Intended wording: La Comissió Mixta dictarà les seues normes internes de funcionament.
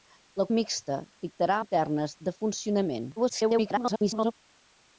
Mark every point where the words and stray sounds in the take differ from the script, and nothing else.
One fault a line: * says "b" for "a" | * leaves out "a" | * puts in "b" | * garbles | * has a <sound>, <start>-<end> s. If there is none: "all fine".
* leaves out "Comissió"
* leaves out "les seues normes"
* garbles